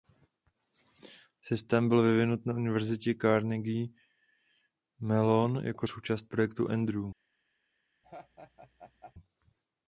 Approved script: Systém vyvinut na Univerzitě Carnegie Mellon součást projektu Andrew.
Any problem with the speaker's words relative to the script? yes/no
yes